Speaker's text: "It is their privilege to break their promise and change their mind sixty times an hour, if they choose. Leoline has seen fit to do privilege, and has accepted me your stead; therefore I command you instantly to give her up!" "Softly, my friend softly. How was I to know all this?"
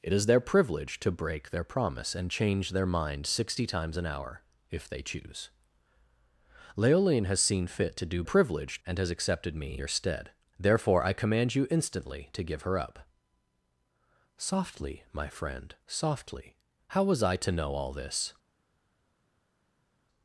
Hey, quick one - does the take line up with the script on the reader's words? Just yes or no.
yes